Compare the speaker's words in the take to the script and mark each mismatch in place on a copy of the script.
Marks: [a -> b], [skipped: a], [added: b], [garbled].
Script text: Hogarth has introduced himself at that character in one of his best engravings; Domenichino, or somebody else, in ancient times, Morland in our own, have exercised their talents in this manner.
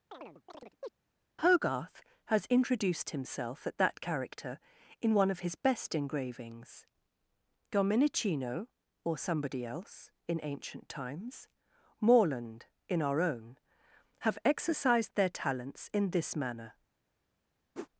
Hogarth has introduced himself at that character in one of his best engravings; Domenichino, or somebody else, in ancient times, Morland in our own, have exercised their talents in this manner.